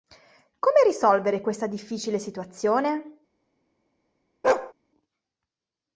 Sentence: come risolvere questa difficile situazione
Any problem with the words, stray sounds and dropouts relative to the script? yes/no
yes